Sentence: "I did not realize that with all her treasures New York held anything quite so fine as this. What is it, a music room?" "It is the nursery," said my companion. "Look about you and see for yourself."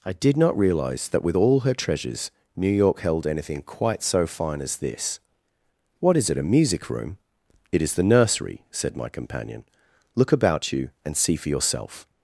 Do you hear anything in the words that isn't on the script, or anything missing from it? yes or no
no